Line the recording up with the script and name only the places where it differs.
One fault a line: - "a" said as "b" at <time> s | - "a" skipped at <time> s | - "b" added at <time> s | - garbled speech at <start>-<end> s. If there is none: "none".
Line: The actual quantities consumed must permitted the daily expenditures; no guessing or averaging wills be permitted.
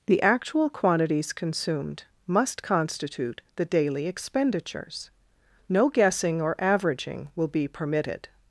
- "permitted" said as "constitute" at 2.6 s
- "wills" said as "will" at 7.3 s